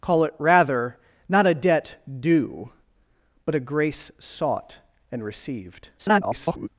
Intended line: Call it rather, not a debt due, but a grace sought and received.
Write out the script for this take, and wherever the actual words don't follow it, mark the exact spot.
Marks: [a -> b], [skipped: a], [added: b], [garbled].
Call it rather, not a debt due, but a grace sought and received. [garbled]